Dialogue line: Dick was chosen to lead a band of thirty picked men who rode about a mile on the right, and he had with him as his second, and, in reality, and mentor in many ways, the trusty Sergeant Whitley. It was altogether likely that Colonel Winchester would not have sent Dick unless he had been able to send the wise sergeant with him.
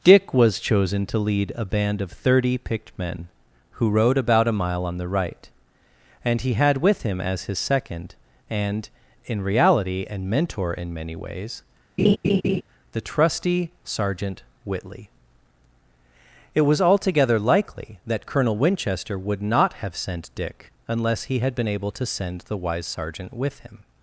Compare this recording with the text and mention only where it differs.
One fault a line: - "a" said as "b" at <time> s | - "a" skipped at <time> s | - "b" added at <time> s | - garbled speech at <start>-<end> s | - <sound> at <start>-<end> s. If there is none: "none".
- laugh at 12.0-12.6 s